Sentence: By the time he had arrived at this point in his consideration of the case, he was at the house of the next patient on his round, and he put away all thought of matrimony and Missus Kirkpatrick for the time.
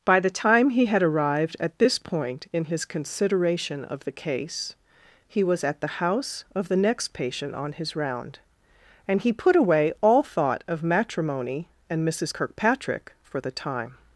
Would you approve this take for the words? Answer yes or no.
yes